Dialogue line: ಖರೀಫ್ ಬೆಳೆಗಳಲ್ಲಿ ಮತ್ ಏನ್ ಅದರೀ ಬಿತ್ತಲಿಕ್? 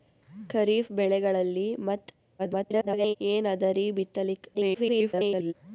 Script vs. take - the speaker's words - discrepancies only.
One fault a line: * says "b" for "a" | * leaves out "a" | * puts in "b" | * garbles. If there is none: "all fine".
* garbles
* garbles